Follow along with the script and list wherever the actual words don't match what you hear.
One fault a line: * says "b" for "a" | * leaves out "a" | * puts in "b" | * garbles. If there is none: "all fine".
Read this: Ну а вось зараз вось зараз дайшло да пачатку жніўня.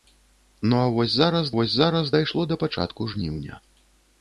all fine